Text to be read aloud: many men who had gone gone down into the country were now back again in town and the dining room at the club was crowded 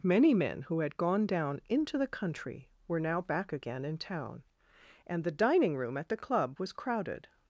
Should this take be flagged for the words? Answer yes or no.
yes